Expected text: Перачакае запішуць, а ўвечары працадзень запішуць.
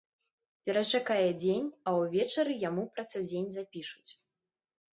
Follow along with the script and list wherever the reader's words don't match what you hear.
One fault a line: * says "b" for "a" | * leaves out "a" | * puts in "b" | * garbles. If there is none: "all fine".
* says "дзень" for "запішуць"
* puts in "яму"